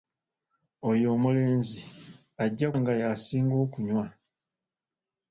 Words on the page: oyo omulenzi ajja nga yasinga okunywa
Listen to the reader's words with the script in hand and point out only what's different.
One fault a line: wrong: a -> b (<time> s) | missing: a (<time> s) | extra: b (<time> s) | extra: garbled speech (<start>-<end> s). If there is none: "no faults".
no faults